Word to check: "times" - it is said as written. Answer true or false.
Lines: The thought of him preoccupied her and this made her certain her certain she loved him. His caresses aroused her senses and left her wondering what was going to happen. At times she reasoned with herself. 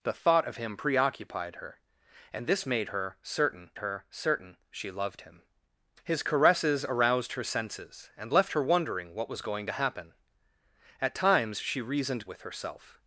true